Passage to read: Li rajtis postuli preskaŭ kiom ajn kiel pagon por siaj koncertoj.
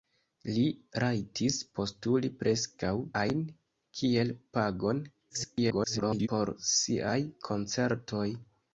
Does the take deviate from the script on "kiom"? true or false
true